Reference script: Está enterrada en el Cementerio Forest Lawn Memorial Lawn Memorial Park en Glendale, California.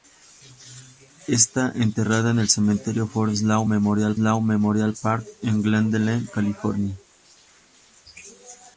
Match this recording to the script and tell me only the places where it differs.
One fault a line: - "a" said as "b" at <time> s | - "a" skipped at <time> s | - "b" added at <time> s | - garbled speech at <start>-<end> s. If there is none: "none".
none